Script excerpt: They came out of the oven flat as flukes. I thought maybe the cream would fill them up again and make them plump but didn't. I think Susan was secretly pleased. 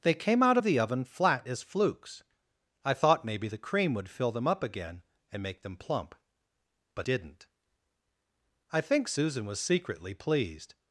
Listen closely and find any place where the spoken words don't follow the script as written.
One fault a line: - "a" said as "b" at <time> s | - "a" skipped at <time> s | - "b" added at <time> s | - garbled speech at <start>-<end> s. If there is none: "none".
none